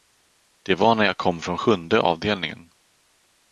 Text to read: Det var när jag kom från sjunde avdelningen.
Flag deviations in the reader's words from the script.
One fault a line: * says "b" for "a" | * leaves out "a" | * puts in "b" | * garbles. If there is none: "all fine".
all fine